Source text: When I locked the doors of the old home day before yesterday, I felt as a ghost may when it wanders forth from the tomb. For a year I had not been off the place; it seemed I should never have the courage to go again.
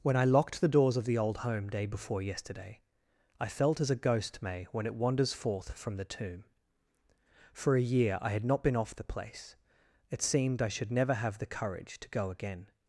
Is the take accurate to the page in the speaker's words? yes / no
yes